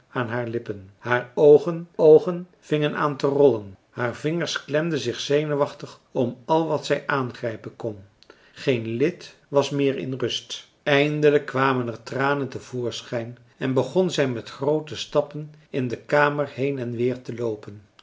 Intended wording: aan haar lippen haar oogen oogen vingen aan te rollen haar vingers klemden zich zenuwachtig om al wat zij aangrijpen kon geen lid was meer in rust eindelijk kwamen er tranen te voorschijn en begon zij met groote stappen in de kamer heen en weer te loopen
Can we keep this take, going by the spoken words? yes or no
yes